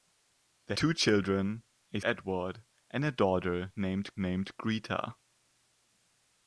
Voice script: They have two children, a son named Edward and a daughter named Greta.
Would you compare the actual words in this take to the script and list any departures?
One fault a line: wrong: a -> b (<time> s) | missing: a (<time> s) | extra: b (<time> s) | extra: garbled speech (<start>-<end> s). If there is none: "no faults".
missing: have (0.7 s)
missing: son named (2.0 s)
extra: named (4.2 s)